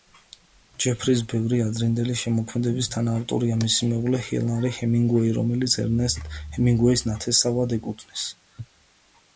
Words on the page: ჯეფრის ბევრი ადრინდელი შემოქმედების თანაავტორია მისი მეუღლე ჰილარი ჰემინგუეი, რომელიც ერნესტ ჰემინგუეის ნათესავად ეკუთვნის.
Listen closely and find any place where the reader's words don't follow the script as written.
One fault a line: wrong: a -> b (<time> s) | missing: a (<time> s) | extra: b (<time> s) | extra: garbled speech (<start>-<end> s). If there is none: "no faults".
no faults